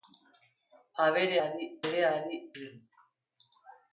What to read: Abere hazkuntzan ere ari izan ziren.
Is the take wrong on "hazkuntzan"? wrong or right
wrong